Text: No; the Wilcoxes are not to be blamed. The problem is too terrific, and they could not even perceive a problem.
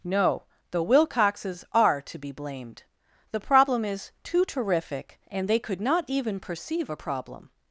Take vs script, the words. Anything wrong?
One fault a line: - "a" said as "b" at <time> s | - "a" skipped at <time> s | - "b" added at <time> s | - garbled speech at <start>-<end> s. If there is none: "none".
- "not" skipped at 2.0 s